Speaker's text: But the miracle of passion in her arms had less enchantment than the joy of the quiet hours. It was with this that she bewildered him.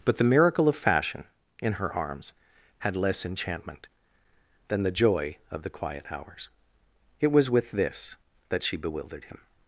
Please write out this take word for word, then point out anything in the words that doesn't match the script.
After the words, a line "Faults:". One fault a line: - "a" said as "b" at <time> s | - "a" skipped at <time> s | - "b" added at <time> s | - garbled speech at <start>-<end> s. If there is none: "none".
But the miracle of fashion in her arms had less enchantment than the joy of the quiet hours. It was with this that she bewildered him.
Faults:
- "passion" said as "fashion" at 0.8 s